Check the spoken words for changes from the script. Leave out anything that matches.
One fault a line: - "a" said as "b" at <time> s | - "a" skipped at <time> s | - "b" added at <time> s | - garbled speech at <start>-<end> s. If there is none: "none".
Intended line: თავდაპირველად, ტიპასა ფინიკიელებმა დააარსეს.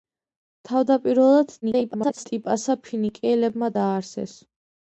- garbled speech at 1.6-2.3 s